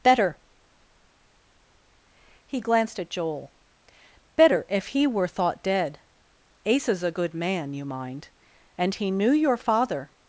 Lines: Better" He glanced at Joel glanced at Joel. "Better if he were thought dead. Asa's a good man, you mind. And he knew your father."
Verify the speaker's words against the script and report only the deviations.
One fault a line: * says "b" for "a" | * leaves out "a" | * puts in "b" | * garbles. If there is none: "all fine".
* leaves out "glanced at Joel"